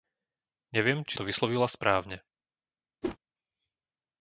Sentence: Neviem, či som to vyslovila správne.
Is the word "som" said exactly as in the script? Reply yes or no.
no